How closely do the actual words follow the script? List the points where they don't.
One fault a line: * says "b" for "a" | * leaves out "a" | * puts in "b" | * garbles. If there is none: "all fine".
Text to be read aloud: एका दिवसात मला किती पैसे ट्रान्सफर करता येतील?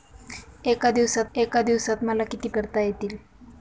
* puts in "एका दिवसात"
* leaves out "पैसे ट्रान्सफर"